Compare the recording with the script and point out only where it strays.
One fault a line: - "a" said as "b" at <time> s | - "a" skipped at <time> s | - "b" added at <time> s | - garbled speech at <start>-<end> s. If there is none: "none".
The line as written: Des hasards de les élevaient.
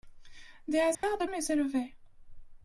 none